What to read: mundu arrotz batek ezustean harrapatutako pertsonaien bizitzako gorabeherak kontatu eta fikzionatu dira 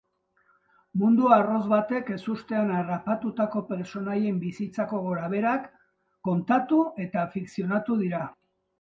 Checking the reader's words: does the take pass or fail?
pass